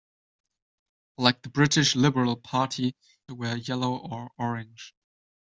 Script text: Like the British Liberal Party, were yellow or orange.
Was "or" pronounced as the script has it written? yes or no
yes